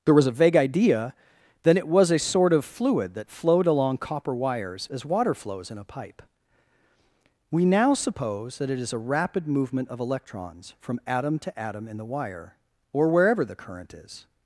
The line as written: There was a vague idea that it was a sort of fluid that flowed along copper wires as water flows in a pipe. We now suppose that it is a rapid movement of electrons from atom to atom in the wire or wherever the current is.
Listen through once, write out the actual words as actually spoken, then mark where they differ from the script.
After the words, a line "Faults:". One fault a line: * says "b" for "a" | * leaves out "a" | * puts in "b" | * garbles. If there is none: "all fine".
There was a vague idea then it was a sort of fluid that flowed along copper wires as water flows in a pipe. We now suppose that it is a rapid movement of electrons from atom to atom in the wire or wherever the current is.
Faults:
* says "then" for "that"